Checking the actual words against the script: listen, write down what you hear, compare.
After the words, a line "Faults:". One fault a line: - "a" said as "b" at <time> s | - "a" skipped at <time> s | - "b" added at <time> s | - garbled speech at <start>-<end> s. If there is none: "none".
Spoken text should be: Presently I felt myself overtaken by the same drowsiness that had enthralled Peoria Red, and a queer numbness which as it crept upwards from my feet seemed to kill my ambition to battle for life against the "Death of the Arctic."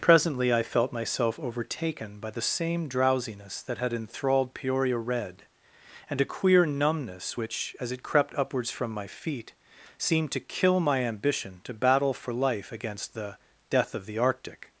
Presently I felt myself overtaken by the same drowsiness that had enthralled Peoria Red, and a queer numbness which as it crept upwards from my feet seemed to kill my ambition to battle for life against the "Death of the Arctic."
Faults:
none